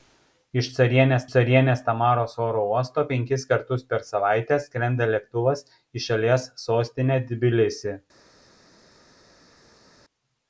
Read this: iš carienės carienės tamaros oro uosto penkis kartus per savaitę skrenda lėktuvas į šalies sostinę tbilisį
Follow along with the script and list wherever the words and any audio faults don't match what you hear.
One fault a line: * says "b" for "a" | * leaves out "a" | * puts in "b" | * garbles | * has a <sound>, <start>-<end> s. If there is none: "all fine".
all fine